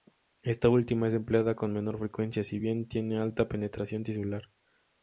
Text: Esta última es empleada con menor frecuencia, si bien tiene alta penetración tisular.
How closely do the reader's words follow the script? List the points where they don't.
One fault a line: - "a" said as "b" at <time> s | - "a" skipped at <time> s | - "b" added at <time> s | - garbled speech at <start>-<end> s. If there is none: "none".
none